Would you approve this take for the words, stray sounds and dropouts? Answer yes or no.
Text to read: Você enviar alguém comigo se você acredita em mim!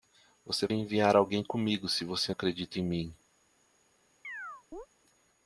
no